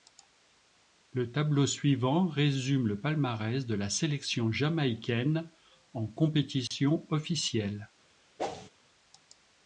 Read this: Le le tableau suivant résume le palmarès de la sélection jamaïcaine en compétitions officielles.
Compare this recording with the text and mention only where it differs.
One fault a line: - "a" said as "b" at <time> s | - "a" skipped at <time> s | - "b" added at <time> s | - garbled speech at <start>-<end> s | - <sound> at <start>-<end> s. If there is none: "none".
- "le" skipped at 1.3 s
- dropout at 6.7-6.7 s
- whoosh at 8.4-8.7 s